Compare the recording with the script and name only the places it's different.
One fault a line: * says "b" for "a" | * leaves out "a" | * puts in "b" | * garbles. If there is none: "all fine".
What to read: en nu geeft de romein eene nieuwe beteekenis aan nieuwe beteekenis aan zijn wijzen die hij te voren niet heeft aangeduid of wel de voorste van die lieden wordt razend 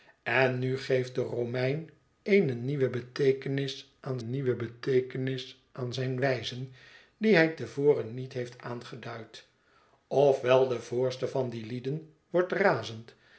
all fine